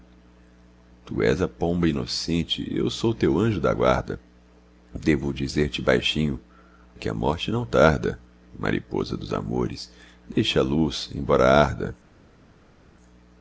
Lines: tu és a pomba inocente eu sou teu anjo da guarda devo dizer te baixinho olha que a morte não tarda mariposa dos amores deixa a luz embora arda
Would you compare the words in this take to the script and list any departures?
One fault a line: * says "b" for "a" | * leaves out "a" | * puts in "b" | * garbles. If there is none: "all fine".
* leaves out "olha"